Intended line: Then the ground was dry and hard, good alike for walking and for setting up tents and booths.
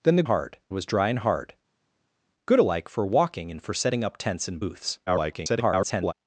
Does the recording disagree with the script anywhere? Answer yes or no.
yes